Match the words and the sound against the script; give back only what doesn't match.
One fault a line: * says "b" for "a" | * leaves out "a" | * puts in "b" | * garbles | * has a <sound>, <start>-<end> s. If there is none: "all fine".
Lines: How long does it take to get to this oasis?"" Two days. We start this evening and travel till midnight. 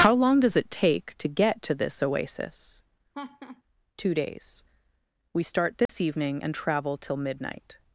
* has a laugh, 3.1-3.6 s
* has a dropout, 5.9-5.9 s